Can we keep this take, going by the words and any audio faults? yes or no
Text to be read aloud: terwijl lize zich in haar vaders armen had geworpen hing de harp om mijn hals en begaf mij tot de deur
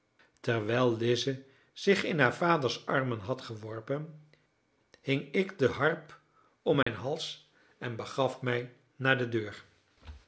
no